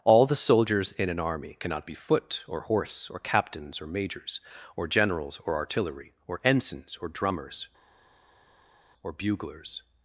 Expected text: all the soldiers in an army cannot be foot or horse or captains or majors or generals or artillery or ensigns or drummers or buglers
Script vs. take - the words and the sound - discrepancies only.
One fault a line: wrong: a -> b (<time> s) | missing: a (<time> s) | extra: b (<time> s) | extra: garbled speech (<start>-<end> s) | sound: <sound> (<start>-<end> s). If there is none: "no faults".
no faults